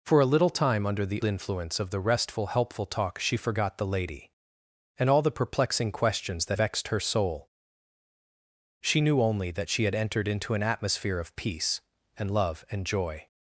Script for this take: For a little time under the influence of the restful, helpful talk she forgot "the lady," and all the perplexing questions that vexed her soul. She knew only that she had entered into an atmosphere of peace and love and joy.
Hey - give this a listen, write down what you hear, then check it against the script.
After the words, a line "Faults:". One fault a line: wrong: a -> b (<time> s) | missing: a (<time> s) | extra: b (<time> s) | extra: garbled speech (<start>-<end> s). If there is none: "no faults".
For a little time under the influence of the restful, helpful talk she forgot "the lady," and all the perplexing questions that vexed her soul. She knew only that she had entered into an atmosphere of peace and love and joy.
Faults:
no faults